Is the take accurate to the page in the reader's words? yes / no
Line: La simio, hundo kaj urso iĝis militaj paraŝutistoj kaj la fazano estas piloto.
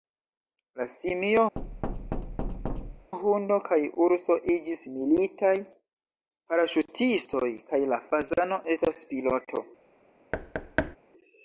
yes